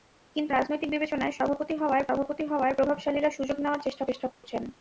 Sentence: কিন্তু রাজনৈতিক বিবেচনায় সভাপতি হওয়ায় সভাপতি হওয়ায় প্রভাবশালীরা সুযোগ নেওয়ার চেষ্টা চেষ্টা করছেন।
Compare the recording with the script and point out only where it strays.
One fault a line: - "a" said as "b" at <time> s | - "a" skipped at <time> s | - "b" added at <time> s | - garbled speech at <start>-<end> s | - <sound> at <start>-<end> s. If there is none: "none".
- dropout at 4.3-4.4 s